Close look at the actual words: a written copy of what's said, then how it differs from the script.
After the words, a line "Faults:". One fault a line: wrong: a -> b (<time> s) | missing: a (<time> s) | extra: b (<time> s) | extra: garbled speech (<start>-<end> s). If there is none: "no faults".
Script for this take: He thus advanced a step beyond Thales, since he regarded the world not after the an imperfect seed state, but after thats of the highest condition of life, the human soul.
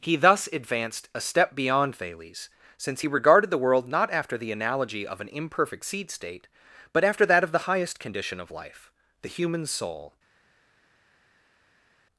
He thus advanced a step beyond Thales, since he regarded the world not after the analogy of an imperfect seed state, but after that of the highest condition of life, the human soul.
Faults:
extra: analogy of (4.5 s)
wrong: thats -> that (7.3 s)